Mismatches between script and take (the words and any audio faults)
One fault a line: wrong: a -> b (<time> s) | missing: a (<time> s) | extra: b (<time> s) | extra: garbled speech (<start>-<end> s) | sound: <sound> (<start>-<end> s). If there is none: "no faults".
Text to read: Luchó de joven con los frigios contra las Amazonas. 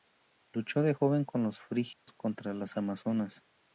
sound: dropout (1.9-2.1 s)